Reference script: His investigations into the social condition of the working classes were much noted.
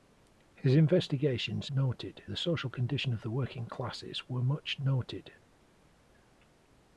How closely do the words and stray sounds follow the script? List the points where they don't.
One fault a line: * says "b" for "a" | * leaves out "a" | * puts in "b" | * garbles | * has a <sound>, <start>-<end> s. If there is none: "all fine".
* says "noted" for "into"